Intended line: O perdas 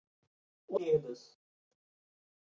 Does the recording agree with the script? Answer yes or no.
yes